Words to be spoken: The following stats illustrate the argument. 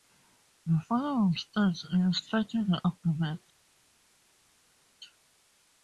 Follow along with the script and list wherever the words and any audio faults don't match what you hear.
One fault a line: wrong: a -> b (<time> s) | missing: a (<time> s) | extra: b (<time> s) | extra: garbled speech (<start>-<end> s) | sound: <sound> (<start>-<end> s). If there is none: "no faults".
no faults